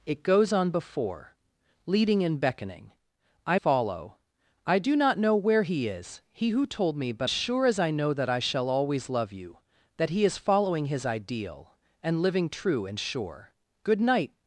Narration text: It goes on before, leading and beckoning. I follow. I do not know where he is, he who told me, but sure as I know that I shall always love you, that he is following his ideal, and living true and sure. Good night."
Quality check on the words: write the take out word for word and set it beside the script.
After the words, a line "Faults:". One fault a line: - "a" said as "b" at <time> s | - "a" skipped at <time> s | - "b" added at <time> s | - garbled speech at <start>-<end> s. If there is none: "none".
It goes on before, leading and beckoning. I follow. I do not know where he is, he who told me, but sure as I know that I shall always love you, that he is following his ideal, and living true and sure. Good night."
Faults:
none